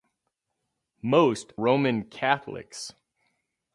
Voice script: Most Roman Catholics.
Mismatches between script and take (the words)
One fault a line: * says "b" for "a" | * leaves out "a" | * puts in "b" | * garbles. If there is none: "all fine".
all fine